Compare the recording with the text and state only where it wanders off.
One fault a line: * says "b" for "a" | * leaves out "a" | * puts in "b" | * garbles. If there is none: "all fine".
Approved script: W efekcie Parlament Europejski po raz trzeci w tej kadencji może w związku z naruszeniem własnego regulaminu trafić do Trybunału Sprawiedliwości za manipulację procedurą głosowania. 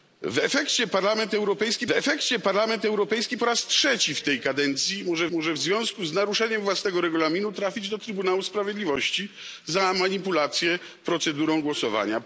* puts in "efekcie Parlament Europejski"
* puts in "może"